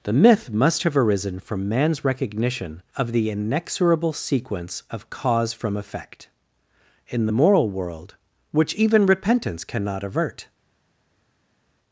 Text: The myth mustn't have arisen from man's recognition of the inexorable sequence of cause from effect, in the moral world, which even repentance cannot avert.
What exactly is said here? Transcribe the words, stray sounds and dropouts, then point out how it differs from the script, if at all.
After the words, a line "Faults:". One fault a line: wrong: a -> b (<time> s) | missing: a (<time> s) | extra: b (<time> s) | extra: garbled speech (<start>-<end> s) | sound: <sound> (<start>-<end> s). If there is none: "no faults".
The myth must have arisen from man's recognition of the inexorable sequence of cause from effect, in the moral world, which even repentance cannot avert.
Faults:
wrong: mustn't -> must (0.5 s)